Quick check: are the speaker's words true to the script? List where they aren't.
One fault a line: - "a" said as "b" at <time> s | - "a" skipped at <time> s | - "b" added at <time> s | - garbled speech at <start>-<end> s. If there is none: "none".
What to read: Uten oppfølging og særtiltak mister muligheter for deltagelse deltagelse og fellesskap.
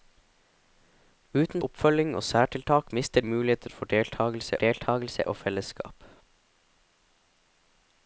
none